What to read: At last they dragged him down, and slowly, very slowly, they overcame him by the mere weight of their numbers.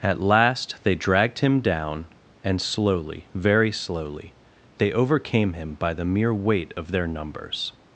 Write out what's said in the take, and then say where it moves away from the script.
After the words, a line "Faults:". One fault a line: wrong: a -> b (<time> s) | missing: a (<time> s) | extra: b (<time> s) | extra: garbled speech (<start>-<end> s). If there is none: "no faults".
At last they dragged him down, and slowly, very slowly, they overcame him by the mere weight of their numbers.
Faults:
no faults